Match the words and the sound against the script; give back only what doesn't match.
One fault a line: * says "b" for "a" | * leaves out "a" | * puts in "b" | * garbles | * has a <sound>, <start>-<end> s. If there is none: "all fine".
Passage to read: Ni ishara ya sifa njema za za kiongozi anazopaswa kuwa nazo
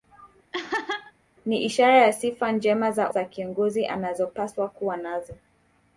* has a laugh, 0.5-1.1 s